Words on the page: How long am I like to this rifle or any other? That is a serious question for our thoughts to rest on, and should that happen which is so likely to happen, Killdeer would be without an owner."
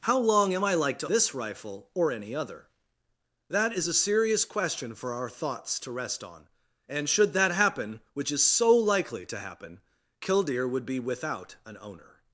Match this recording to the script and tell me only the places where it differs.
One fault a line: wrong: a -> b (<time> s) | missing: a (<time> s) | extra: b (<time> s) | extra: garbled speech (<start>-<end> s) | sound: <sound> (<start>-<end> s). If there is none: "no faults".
no faults